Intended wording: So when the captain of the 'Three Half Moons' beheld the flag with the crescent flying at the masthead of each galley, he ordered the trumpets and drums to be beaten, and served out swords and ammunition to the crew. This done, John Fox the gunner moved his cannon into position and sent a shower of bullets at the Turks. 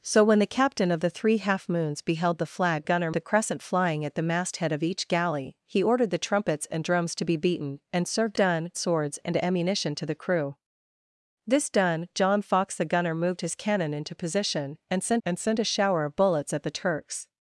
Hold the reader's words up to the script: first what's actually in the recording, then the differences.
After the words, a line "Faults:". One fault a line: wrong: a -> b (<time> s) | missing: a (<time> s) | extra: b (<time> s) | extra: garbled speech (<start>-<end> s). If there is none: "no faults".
So when the captain of the 'Three Half Moons' beheld the flag gunner the crescent flying at the masthead of each galley, he ordered the trumpets and drums to be beaten, and served done swords and ammunition to the crew. This done, John Fox the gunner moved his cannon into position and sent and sent a shower of bullets at the Turks.
Faults:
wrong: with -> gunner (2.8 s)
wrong: out -> done (8.3 s)
extra: and sent (15.3 s)